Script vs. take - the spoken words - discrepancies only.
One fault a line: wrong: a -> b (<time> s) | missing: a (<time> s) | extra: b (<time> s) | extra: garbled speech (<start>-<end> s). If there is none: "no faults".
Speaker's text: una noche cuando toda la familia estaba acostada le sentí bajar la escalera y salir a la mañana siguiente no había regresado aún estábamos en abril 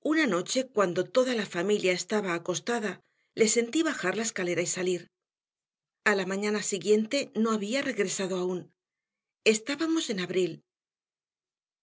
no faults